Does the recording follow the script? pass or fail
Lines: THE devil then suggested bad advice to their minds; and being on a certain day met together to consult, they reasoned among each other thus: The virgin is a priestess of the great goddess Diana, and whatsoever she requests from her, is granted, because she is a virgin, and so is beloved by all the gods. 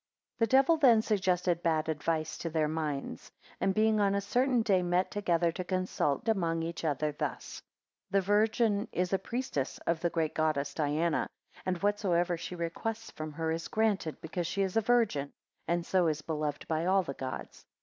fail